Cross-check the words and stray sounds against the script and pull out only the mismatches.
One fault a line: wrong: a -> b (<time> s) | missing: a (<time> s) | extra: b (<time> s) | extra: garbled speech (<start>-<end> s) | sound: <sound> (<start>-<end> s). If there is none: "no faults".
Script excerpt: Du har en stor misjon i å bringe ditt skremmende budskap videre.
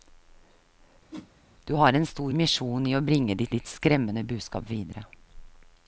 sound: whoosh (1.1-1.3 s)
extra: ditt (3.5 s)